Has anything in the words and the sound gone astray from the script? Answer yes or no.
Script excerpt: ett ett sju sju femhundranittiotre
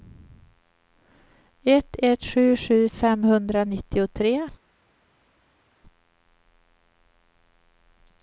no